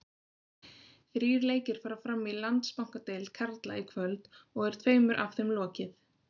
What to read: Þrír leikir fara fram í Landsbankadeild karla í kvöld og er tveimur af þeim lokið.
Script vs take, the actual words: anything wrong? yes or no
no